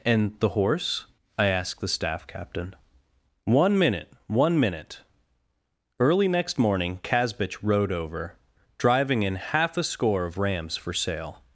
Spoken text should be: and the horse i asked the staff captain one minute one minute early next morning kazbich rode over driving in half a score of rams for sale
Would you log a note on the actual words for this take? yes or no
no